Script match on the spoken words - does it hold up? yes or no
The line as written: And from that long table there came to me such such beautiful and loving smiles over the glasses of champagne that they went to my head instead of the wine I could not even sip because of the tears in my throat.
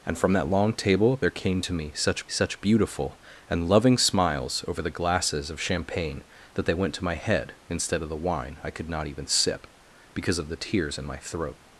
yes